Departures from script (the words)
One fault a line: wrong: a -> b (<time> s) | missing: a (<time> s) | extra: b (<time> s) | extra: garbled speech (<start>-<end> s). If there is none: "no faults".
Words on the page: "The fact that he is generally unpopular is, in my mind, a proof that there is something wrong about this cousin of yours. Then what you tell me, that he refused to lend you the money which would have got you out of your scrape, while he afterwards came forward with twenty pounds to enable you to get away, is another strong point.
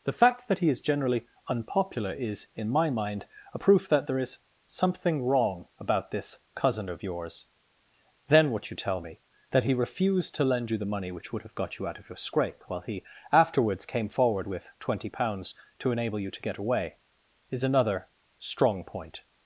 no faults